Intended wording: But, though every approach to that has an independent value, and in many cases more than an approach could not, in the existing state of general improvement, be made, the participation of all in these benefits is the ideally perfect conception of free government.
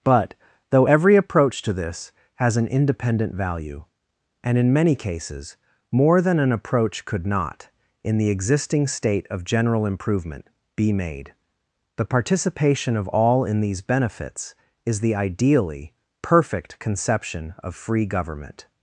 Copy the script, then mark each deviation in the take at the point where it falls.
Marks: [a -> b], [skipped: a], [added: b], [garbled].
But, though every approach to [that -> this] has an independent value, and in many cases more than an approach could not, in the existing state of general improvement, be made, the participation of all in these benefits is the ideally perfect conception of free government.